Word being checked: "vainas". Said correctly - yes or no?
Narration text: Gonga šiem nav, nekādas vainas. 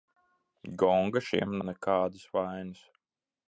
yes